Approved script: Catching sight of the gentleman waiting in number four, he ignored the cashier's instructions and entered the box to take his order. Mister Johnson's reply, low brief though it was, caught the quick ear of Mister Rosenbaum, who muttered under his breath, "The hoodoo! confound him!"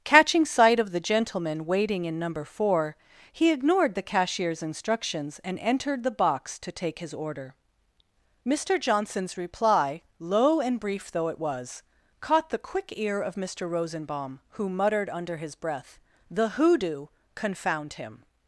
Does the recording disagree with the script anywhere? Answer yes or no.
yes